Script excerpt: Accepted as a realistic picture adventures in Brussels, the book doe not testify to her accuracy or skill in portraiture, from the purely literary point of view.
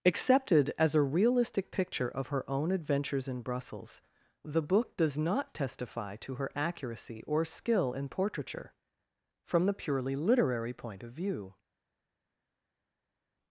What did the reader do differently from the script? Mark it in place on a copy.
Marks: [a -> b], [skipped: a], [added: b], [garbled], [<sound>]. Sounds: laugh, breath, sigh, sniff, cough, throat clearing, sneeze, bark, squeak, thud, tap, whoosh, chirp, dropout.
Accepted as a realistic picture [added: of her own] adventures in Brussels, the book [doe -> does] not testify to her accuracy or skill in portraiture, from the purely literary point of view.